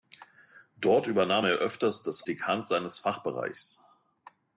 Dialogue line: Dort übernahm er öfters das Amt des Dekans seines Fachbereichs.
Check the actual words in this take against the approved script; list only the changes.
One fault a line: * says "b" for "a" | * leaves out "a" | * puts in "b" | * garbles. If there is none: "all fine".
* leaves out "Amt des"